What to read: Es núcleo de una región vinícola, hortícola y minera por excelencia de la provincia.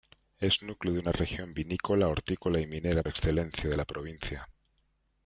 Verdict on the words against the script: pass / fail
fail